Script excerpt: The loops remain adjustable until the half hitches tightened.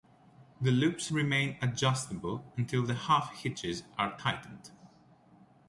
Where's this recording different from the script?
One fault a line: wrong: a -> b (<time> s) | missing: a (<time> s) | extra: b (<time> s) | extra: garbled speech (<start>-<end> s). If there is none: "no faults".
extra: are (4.0 s)